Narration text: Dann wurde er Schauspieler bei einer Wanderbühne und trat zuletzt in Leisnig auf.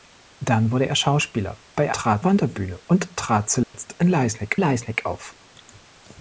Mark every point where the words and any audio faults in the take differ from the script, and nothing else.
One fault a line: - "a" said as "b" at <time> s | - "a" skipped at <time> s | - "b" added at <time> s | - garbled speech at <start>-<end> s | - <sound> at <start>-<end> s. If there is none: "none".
- "einer" said as "trat" at 1.9 s
- dropout at 3.6-3.7 s
- "Leisnig" added at 4.5 s